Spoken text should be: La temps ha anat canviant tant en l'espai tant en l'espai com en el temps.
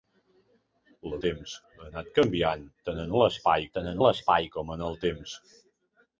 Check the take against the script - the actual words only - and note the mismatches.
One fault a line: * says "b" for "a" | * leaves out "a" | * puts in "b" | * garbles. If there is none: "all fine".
all fine